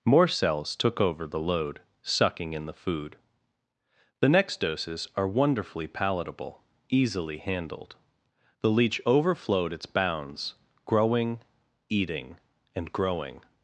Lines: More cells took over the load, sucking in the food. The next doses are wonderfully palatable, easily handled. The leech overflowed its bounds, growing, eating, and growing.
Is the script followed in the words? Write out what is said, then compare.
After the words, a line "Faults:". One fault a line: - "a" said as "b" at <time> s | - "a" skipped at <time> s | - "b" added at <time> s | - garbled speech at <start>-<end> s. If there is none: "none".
More cells took over the load, sucking in the food. The next doses are wonderfully palatable, easily handled. The leech overflowed its bounds, growing, eating, and growing.
Faults:
none